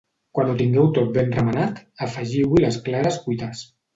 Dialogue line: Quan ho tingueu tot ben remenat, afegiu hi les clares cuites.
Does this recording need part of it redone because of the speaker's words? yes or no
no